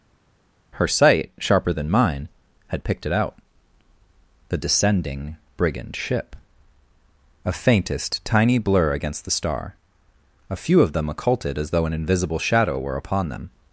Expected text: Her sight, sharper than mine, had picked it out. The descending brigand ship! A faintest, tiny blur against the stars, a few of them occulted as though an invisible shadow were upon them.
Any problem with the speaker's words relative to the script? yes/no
yes